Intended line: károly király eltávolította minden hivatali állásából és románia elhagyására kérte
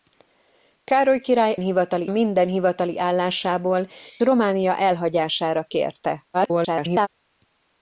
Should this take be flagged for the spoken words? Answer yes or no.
yes